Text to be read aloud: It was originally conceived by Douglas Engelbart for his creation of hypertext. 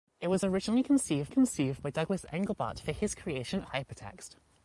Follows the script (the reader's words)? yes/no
no